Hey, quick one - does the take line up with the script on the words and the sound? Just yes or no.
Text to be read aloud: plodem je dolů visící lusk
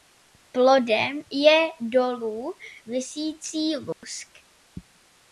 no